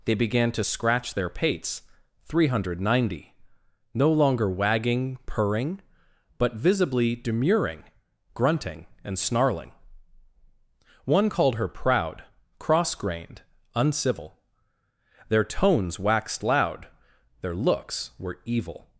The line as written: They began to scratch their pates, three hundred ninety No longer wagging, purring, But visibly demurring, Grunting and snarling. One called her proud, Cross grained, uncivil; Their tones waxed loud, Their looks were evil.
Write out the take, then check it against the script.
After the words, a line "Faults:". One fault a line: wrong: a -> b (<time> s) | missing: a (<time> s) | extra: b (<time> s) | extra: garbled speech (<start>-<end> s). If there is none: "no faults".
They began to scratch their pates, three hundred ninety No longer wagging, purring, But visibly demurring, Grunting and snarling. One called her proud, Cross grained, uncivil; Their tones waxed loud, Their looks were evil.
Faults:
no faults